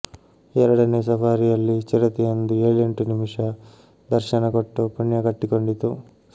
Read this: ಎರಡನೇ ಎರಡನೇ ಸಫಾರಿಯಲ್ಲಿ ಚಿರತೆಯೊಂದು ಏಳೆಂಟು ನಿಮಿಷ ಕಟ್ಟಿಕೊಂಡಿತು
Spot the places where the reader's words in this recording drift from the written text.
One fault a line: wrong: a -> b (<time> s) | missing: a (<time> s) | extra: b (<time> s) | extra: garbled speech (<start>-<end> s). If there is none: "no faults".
missing: ಎರಡನೇ (1.0 s)
extra: ದರ್ಶನ ಕೊಟ್ಟು ಪುಣ್ಯ (4.1 s)